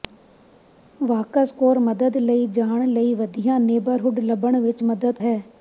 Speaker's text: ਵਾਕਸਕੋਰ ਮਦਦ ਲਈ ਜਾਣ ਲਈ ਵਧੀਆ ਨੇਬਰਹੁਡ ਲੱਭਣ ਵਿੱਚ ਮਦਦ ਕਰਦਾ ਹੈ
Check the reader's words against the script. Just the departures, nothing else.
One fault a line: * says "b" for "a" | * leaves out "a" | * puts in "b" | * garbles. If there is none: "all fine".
* leaves out "ਕਰਦਾ"